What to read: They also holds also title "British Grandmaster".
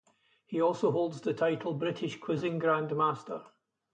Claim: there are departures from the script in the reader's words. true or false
true